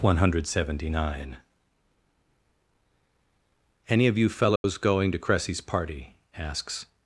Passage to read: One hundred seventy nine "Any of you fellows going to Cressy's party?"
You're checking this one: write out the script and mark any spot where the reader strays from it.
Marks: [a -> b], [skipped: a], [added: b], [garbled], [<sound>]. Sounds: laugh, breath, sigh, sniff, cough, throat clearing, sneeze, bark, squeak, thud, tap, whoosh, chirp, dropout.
One hundred seventy nine "Any of you fellows [dropout] going to Cressy's party?" [added: asks]